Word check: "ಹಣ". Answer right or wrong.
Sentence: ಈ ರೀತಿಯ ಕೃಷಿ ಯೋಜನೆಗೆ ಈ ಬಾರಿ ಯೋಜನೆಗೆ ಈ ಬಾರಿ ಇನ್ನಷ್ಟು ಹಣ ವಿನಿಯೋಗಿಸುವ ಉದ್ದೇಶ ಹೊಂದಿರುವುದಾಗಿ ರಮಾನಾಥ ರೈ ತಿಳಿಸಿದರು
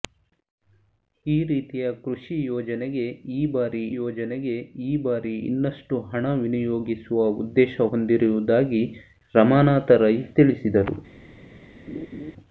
right